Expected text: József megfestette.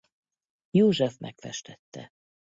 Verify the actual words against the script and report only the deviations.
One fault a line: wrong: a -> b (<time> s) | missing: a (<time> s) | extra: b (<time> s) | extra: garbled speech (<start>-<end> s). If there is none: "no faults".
no faults